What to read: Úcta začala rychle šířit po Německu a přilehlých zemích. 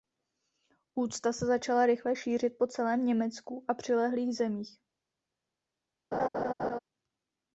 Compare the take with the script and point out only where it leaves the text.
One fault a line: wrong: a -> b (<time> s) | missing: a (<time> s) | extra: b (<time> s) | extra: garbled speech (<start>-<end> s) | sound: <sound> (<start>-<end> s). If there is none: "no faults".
extra: se (1.3 s)
extra: celém (2.7 s)
sound: laugh (6.1-6.8 s)